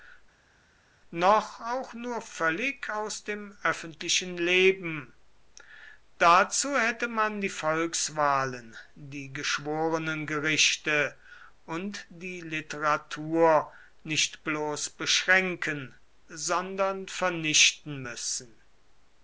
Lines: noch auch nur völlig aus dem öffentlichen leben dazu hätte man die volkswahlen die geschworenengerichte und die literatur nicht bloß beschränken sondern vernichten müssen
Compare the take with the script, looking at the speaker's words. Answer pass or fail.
pass